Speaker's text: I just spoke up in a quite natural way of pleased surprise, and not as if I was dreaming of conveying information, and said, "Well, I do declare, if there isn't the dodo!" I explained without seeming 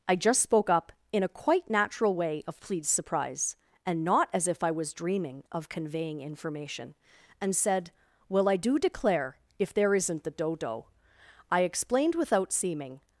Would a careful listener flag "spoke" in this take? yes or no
no